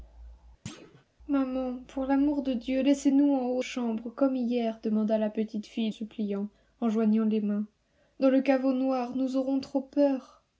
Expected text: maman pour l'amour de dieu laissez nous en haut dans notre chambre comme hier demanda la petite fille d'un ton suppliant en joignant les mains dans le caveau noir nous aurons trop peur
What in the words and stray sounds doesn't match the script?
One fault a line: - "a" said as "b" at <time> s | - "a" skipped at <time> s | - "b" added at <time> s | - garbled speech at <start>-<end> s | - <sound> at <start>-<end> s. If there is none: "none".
- thud at 0.7-1.1 s
- "dans notre" skipped at 3.6 s
- "d'un ton" skipped at 5.9 s